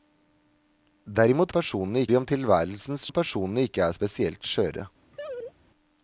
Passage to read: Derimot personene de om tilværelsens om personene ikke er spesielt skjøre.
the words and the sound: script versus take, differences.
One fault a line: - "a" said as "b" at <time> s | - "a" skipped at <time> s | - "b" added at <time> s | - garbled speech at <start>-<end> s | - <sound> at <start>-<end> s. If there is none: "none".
- laugh at 5.1-5.5 s